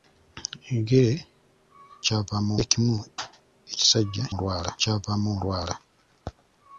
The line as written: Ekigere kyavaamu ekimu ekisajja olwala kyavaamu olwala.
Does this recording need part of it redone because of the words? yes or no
no